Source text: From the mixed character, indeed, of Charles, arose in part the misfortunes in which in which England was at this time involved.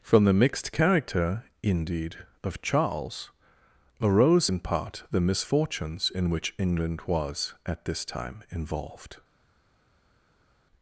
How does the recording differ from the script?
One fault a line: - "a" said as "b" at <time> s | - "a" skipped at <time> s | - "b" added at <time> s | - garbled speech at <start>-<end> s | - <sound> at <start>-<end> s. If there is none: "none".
- "in which" skipped at 6.5 s